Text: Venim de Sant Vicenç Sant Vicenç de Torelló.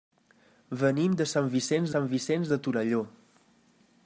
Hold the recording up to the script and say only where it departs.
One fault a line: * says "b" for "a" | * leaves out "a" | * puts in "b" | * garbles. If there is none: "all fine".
all fine